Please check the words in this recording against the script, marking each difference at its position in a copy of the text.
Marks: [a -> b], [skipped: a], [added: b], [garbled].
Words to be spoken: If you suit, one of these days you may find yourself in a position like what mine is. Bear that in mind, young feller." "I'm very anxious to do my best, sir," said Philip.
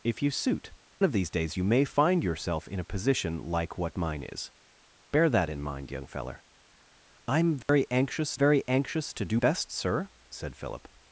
If you suit, [skipped: one] of these days you may find yourself in a position like what mine is. Bear that in mind, young feller." "I'm very anxious [added: very anxious] to do [skipped: my] best, sir," said Philip.